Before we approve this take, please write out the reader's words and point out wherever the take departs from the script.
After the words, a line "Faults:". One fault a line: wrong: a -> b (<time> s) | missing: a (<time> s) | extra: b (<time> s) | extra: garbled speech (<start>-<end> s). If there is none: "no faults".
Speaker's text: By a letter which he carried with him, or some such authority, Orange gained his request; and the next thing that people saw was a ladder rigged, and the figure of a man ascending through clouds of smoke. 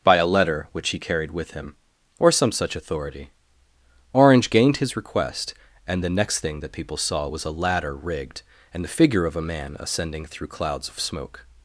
By a letter which he carried with him, or some such authority, Orange gained his request; and the next thing that people saw was a ladder rigged, and the figure of a man ascending through clouds of smoke.
Faults:
no faults